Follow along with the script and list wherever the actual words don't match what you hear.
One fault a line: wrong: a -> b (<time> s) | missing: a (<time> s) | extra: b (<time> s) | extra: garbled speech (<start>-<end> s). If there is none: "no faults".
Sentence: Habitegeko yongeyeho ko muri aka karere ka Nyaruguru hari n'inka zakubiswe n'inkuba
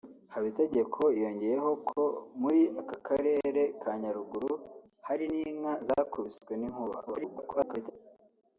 extra: garbled speech (7.1-7.9 s)